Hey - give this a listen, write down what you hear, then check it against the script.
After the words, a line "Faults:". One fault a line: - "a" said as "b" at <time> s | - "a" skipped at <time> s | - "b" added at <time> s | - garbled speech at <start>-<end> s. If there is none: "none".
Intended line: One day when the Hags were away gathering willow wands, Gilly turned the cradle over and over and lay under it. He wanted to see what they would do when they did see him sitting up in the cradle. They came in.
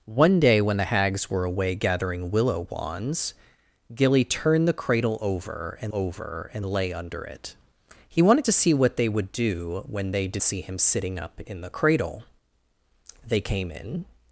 One day when the Hags were away gathering willow wands, Gilly turned the cradle over and over and lay under it. He wanted to see what they would do when they did see him sitting up in the cradle. They came in.
Faults:
none